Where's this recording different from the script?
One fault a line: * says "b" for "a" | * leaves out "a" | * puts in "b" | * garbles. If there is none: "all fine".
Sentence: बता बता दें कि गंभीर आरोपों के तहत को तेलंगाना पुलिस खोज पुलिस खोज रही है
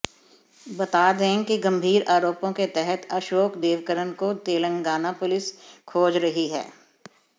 * leaves out "बता"
* puts in "अशोक देवकरण"
* leaves out "पुलिस खोज"